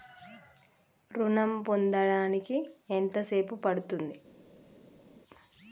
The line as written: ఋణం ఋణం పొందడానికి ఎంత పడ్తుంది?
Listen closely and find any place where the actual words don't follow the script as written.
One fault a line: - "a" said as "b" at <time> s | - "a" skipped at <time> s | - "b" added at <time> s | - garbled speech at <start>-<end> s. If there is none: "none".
- "ఋణం" skipped at 1.5 s
- "సేపు" added at 3.2 s